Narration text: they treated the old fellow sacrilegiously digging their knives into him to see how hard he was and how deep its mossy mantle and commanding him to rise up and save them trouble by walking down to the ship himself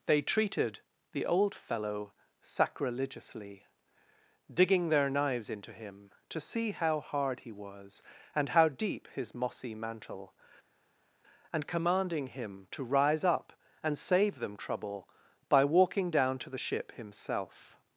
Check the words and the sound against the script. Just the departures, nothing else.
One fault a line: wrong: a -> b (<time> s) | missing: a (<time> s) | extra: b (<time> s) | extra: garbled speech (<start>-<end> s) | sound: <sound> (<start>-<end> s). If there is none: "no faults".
wrong: its -> his (9.1 s)